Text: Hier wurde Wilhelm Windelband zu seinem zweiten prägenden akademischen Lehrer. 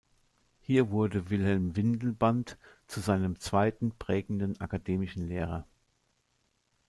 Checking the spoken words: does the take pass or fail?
pass